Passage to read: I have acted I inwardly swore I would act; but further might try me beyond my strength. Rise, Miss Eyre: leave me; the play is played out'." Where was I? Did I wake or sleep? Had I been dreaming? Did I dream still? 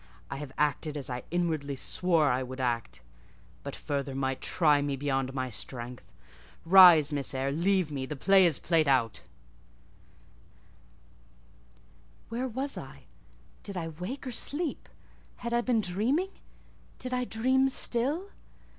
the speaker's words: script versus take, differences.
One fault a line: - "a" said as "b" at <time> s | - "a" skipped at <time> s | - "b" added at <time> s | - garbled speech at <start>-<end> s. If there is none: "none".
- "as" added at 1.0 s